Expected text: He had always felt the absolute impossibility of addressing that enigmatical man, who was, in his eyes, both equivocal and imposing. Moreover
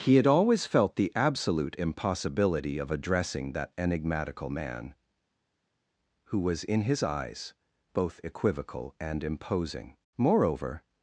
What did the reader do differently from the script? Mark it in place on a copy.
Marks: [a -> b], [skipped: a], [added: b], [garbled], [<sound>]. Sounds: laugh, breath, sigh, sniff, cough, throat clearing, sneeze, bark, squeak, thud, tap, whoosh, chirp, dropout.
He had always felt the absolute impossibility of addressing that enigmatical man, who was, in his eyes, both equivocal and imposing. Moreover